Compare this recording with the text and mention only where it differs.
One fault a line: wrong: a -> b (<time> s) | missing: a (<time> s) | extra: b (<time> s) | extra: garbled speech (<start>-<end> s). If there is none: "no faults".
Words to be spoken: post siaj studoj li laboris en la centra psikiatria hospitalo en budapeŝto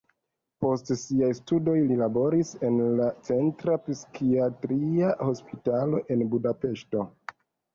no faults